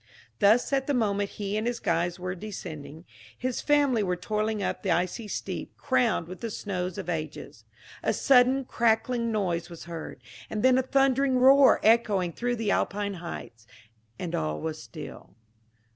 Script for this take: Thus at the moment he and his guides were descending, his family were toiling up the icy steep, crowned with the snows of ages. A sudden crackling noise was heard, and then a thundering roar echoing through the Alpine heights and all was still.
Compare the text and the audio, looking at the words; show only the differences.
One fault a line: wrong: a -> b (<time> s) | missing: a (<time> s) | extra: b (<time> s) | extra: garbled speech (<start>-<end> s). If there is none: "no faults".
no faults